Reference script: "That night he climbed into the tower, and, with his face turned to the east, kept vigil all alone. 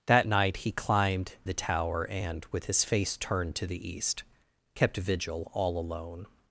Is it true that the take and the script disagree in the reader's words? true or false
true